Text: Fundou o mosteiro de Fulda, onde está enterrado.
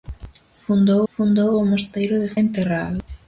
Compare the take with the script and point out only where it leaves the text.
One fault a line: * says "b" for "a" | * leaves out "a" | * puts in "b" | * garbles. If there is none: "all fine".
* puts in "fundou"
* leaves out "Fulda onde está"